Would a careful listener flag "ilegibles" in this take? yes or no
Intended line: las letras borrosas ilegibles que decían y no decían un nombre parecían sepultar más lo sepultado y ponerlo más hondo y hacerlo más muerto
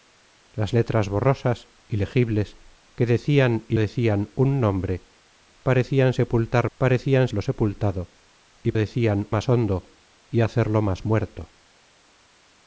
no